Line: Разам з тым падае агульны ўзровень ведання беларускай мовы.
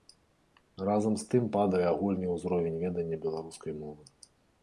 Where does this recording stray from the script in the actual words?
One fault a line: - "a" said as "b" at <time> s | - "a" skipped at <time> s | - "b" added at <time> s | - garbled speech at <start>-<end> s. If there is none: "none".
none